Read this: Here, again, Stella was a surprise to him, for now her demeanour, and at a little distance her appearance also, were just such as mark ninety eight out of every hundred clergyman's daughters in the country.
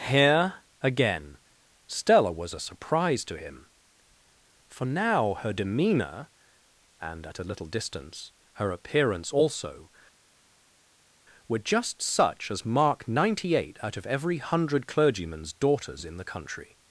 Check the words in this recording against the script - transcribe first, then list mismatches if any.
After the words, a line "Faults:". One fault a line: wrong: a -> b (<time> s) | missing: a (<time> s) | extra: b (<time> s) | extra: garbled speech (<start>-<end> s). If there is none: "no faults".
Here, again, Stella was a surprise to him, for now her demeanour, and at a little distance her appearance also, were just such as mark ninety eight out of every hundred clergyman's daughters in the country.
Faults:
no faults